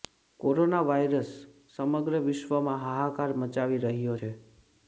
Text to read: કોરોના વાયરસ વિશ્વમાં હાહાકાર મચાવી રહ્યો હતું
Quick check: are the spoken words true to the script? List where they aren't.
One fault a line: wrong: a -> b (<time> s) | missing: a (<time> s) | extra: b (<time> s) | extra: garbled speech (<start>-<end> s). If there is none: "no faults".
extra: સમગ્ર (1.7 s)
wrong: હતું -> છે (4.1 s)